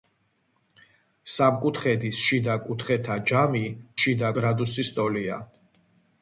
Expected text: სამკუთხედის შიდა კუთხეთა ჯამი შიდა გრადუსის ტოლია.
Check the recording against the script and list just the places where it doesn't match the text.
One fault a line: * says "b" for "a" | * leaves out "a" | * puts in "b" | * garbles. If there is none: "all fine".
all fine